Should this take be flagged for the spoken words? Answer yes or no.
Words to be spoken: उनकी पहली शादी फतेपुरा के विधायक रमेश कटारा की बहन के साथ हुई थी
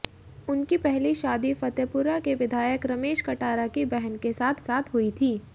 yes